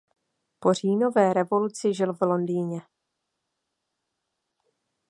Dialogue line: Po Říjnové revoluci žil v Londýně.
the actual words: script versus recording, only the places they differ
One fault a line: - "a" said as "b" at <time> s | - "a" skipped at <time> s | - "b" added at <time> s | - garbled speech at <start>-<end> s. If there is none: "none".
none